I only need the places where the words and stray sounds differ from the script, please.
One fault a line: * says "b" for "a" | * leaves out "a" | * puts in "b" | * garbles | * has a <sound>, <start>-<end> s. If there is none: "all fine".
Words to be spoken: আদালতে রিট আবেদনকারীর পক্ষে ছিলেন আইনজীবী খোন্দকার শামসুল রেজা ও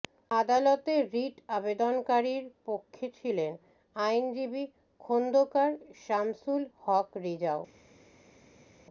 * puts in "হক"